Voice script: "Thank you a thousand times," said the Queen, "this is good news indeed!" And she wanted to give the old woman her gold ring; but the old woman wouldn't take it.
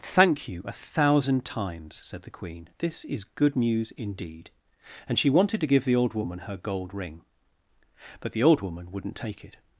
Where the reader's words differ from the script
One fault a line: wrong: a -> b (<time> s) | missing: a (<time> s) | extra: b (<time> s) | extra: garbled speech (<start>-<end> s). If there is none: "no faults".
no faults